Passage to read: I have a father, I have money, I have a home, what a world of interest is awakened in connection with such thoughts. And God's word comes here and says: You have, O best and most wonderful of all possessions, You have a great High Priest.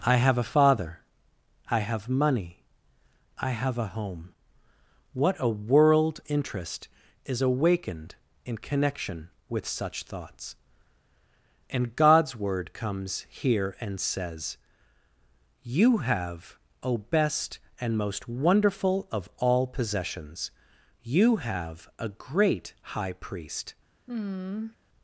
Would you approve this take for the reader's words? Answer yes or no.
no